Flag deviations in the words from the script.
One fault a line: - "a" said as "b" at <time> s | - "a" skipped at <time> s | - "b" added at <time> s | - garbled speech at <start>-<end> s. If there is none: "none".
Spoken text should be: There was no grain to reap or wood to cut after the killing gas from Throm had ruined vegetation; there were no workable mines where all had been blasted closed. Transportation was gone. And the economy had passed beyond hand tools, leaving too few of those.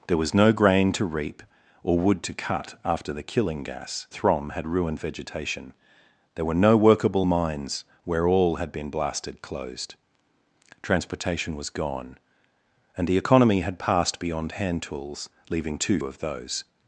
- "from" skipped at 4.1 s
- "few" skipped at 16.0 s